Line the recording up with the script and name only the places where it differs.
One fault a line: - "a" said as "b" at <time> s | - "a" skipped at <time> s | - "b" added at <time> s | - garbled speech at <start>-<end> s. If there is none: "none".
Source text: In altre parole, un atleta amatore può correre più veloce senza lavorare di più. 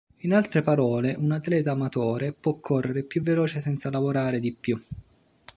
none